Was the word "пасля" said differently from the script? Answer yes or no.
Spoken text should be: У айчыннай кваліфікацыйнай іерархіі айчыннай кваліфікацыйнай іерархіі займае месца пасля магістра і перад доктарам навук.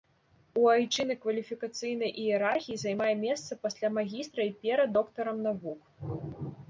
no